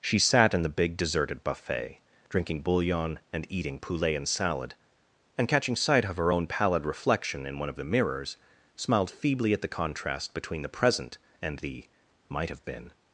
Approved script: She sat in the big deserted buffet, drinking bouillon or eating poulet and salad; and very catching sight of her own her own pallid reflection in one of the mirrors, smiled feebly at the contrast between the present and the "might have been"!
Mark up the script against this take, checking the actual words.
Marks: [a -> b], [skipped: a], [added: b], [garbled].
She sat in the big deserted buffet, drinking bouillon [or -> and] eating poulet and salad; and [skipped: very] catching sight of her own [skipped: her own] pallid reflection in one of the mirrors, smiled feebly at the contrast between the present and the "might have been"!